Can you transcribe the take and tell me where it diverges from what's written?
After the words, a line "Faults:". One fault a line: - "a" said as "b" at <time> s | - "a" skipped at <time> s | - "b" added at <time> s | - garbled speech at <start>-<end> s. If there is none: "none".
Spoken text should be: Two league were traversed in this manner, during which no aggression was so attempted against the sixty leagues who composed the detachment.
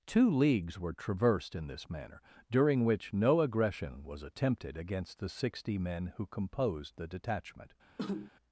Two leagues were traversed in this manner, during which no aggression was attempted against the sixty men who composed the detachment.
Faults:
- "league" said as "leagues" at 0.3 s
- "so" skipped at 4.2 s
- "leagues" said as "men" at 5.8 s